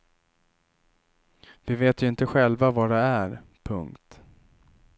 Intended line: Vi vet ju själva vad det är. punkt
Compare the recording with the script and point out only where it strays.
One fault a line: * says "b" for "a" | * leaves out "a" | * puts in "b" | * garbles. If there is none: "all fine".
* puts in "inte"